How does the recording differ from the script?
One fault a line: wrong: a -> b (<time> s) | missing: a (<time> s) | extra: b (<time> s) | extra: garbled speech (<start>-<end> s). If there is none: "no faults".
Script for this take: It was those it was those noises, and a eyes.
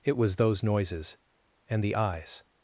missing: it was those (0.6 s)
wrong: a -> the (1.8 s)